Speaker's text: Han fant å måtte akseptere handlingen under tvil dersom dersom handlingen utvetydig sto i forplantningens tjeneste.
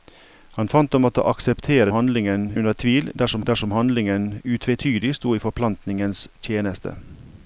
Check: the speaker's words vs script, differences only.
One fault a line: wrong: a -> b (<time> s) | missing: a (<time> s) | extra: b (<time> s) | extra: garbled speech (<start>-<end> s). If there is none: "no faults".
no faults